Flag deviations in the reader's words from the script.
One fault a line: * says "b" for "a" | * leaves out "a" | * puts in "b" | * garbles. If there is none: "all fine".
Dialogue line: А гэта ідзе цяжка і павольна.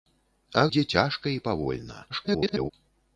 * leaves out "гэта"
* garbles